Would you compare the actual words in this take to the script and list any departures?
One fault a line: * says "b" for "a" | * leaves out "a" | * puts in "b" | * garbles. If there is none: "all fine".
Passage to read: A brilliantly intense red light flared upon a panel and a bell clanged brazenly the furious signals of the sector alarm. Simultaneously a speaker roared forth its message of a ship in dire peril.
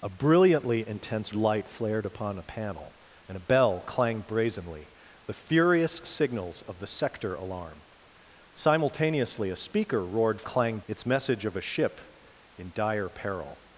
* leaves out "red"
* says "clanged" for "forth"